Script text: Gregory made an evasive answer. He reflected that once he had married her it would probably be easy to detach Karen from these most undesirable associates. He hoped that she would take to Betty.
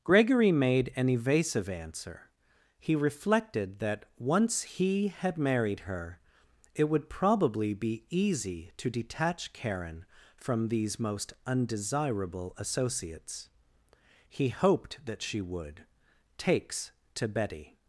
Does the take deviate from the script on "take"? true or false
true